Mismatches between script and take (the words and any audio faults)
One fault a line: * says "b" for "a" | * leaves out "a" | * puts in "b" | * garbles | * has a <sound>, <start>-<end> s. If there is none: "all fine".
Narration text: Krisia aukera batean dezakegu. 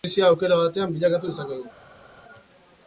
* puts in "bilakatu"